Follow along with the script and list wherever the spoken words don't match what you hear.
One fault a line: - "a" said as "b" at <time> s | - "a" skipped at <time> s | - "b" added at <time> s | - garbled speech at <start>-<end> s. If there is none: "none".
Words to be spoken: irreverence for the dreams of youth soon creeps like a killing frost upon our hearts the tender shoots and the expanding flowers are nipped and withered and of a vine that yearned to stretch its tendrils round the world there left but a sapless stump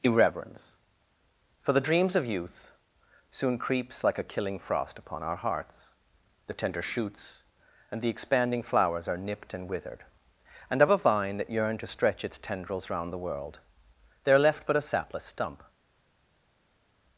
none